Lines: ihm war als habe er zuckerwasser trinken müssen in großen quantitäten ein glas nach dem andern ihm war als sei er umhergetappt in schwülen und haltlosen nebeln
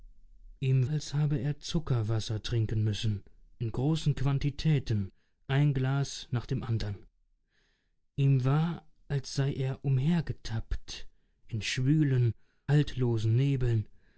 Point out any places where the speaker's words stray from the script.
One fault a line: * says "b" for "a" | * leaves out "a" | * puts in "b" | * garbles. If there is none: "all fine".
* leaves out "war"
* leaves out "und"